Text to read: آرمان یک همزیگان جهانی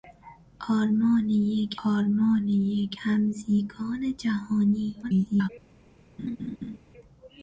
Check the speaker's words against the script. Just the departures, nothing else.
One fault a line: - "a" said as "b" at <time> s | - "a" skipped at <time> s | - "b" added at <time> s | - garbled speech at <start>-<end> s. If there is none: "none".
- "آرمان یک" added at 1.8 s
- garbled speech at 5.0-5.5 s